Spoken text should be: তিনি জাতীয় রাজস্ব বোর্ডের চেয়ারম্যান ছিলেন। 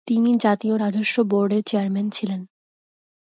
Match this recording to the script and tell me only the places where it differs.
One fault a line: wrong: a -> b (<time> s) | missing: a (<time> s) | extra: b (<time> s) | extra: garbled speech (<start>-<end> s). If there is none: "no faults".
no faults